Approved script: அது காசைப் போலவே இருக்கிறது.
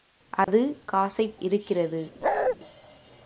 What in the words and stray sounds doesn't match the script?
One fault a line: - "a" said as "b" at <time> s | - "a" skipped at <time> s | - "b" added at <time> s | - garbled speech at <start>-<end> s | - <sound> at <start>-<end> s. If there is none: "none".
- dropout at 0.4-0.5 s
- "போலவே" skipped at 1.4 s
- bark at 2.2-2.6 s